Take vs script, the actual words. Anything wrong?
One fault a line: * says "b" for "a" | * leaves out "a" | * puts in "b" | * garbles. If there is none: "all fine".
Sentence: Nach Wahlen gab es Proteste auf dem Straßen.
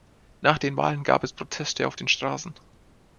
* puts in "den"
* says "den" for "dem"